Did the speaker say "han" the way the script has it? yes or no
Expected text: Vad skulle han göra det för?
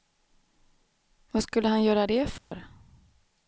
yes